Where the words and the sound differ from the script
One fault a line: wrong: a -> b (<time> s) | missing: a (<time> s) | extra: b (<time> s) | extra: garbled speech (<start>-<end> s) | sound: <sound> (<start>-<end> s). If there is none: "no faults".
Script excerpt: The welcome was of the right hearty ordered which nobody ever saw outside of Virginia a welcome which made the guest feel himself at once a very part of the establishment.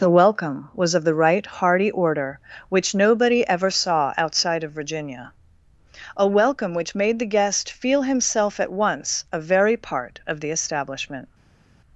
wrong: ordered -> order (1.9 s)